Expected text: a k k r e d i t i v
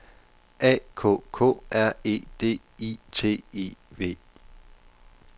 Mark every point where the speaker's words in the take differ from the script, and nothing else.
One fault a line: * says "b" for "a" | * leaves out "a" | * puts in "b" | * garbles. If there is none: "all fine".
all fine